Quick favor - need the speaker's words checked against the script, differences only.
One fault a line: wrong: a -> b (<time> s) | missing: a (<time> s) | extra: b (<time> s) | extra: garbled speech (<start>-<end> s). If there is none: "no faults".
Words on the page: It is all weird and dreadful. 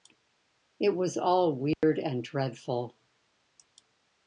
wrong: is -> was (0.9 s)